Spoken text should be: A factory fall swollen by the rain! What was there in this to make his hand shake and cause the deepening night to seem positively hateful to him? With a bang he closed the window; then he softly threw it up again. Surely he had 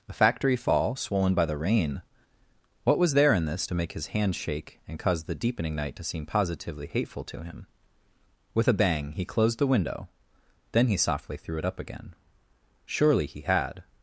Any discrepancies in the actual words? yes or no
no